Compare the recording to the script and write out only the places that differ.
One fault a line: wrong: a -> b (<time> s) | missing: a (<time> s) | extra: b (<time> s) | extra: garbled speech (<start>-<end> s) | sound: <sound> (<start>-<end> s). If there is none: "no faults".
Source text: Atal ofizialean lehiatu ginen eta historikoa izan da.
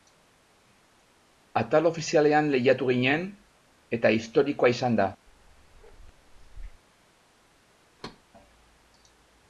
sound: bark (5.3-6.8 s)
sound: thud (8.0-8.2 s)